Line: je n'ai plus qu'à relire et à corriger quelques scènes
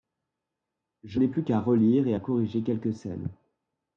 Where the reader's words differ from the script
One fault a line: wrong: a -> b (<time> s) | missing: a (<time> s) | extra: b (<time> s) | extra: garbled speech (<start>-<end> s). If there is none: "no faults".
no faults